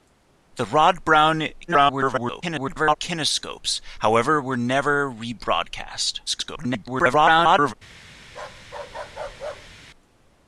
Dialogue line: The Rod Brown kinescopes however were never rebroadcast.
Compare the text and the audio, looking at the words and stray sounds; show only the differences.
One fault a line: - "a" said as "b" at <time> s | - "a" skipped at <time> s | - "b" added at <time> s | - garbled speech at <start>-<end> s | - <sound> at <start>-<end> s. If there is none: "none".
- garbled speech at 1.7-3.0 s
- garbled speech at 6.3-7.7 s
- bark at 8.3-9.8 s